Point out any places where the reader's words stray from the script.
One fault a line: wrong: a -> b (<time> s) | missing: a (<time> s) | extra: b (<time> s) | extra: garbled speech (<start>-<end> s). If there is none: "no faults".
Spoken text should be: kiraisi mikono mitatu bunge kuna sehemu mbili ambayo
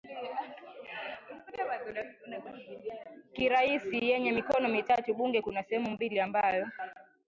extra: yenye (4.1 s)